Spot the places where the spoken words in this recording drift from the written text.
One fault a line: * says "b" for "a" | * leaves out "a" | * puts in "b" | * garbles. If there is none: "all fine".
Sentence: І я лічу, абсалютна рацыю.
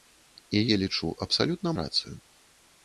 all fine